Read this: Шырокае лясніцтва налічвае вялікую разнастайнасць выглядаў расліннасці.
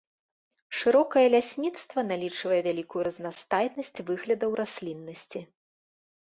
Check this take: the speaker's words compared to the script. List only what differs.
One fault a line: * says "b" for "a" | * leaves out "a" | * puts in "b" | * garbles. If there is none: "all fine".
all fine